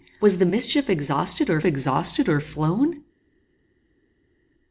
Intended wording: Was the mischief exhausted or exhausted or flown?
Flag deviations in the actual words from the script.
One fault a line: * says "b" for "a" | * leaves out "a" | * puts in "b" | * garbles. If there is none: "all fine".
all fine